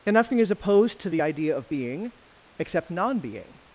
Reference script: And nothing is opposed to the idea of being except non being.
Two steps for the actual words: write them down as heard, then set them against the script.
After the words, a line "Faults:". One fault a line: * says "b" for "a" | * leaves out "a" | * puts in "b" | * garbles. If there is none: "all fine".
And nothing is opposed to the idea of being except non being.
Faults:
all fine